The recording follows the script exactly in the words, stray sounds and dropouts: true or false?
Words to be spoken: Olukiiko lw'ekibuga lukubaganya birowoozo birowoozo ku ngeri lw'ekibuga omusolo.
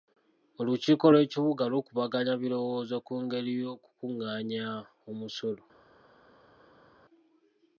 false